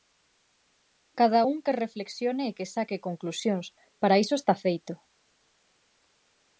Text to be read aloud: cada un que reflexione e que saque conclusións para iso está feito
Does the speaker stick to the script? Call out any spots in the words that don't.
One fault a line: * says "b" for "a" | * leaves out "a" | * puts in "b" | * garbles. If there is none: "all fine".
all fine